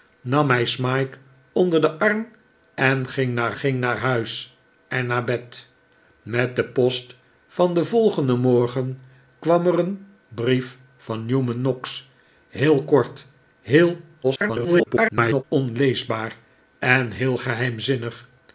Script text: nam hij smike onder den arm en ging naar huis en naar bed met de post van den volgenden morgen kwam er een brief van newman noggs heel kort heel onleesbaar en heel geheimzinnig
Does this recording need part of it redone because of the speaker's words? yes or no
yes